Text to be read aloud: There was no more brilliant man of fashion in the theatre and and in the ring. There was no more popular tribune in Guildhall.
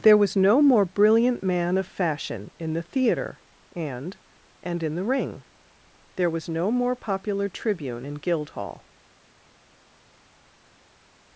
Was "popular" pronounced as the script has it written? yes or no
yes